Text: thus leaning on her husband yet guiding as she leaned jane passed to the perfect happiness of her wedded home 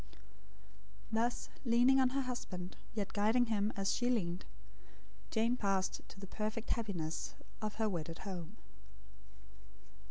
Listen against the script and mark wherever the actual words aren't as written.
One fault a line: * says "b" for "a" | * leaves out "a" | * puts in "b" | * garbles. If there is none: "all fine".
* puts in "him"